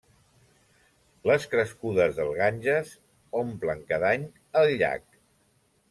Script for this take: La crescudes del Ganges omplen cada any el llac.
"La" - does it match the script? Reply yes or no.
no